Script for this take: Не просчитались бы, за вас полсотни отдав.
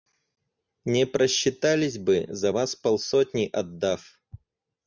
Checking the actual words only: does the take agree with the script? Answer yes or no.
yes